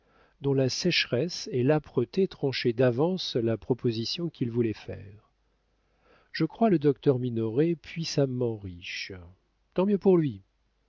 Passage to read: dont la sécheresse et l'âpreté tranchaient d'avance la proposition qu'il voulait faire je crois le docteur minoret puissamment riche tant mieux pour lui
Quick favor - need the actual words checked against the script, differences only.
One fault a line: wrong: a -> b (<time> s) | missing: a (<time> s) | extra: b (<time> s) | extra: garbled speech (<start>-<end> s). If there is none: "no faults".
no faults